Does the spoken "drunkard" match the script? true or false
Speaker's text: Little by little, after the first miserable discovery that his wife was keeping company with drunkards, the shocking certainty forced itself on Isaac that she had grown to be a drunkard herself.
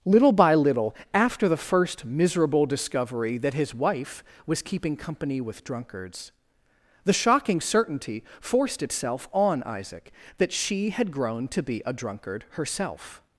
true